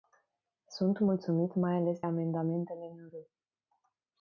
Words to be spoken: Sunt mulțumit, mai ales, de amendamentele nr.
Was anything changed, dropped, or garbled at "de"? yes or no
yes